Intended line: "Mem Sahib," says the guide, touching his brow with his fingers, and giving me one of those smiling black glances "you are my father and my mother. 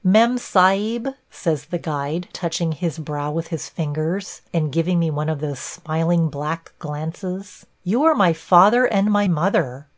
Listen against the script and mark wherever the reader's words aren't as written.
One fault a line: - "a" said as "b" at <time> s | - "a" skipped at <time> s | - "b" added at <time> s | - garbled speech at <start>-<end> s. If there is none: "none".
none